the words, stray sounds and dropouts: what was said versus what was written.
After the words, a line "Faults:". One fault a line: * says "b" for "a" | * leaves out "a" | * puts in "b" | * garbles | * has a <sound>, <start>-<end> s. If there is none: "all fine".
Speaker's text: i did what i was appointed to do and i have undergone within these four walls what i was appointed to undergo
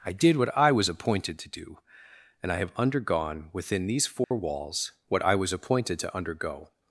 i did what i was appointed to do and i have undergone within these four walls what i was appointed to undergo
Faults:
* has a dropout, 4.2-4.3 s